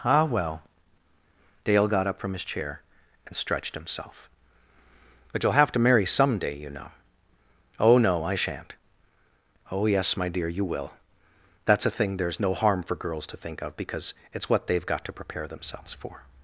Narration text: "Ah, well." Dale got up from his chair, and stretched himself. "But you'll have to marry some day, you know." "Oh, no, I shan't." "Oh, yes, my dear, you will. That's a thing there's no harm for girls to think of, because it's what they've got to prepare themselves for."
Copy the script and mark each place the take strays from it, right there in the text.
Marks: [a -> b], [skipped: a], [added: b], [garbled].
"Ah, well." Dale got up from his chair, and stretched himself. "But you'll have to marry some day, you know." "Oh, no, I shan't." "Oh, yes, my dear, you will. That's a thing there's no harm for girls to think of, because it's what they've got to prepare themselves for."